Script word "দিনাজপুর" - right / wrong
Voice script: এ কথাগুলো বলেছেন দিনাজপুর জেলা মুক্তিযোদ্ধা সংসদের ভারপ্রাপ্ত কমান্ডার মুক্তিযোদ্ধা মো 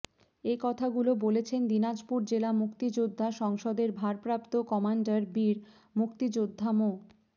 right